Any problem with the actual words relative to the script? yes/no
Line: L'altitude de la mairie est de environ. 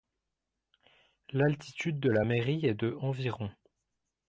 no